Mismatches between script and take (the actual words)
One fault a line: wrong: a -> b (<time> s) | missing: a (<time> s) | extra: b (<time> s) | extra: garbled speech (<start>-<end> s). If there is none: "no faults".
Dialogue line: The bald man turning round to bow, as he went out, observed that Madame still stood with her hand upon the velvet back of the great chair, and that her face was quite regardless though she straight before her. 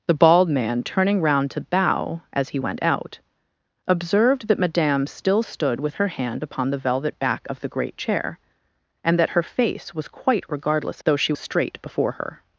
no faults